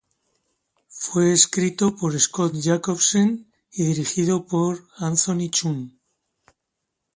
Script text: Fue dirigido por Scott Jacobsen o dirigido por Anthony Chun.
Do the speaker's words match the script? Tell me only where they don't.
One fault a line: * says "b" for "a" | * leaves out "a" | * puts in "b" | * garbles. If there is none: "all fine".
* says "escrito" for "dirigido"
* says "y" for "o"